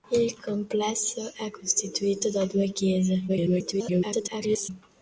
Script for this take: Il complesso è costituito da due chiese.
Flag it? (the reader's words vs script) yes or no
yes